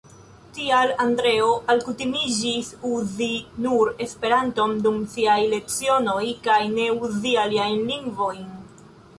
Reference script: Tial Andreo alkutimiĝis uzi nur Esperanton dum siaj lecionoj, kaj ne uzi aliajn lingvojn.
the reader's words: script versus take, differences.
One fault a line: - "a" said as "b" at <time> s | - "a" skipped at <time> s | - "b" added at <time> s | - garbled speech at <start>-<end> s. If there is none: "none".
none